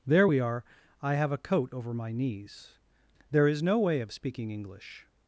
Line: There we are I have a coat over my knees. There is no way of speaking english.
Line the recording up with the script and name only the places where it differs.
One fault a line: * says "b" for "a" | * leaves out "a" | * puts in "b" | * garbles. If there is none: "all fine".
all fine